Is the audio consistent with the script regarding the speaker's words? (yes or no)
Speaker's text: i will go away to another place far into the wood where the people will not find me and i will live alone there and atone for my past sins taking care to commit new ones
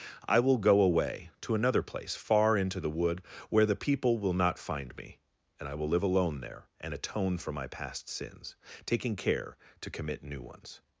yes